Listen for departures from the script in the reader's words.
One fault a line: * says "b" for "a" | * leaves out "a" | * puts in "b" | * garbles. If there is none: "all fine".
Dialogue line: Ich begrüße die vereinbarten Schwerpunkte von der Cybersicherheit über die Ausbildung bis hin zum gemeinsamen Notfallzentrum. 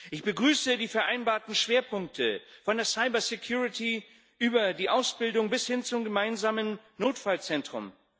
all fine